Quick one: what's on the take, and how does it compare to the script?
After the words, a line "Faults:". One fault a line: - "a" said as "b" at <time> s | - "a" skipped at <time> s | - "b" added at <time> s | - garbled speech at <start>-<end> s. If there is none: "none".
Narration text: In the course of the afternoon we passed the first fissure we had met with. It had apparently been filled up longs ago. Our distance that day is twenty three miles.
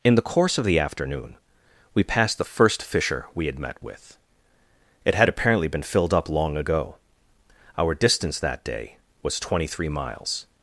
In the course of the afternoon we passed the first fissure we had met with. It had apparently been filled up long ago. Our distance that day was twenty three miles.
Faults:
- "longs" said as "long" at 6.3 s
- "is" said as "was" at 9.2 s